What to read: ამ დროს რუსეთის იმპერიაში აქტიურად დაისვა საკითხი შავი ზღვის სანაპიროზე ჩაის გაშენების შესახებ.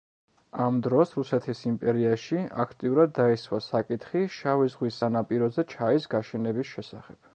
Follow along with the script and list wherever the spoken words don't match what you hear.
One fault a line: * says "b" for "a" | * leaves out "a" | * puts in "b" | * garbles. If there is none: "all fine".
all fine